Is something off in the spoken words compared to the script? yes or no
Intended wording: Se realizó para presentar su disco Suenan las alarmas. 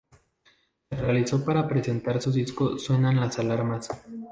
no